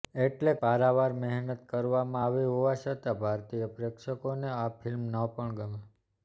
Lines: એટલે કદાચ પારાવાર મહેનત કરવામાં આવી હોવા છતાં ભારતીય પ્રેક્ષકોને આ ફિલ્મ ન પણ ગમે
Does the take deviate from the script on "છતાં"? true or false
false